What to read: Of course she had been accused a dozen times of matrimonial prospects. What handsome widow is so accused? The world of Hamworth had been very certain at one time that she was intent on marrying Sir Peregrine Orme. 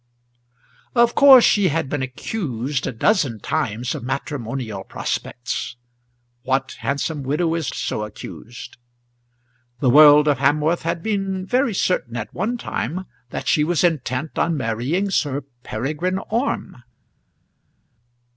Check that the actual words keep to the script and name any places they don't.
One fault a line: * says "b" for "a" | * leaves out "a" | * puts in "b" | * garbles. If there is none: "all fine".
all fine